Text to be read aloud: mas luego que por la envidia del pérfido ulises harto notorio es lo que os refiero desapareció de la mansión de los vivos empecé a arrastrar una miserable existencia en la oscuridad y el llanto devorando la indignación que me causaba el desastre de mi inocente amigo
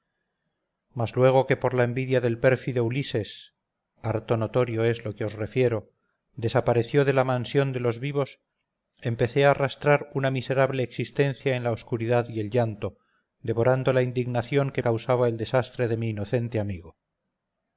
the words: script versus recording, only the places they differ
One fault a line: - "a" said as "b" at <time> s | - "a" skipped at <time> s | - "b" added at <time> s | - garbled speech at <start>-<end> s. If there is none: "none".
- "me" skipped at 14.8 s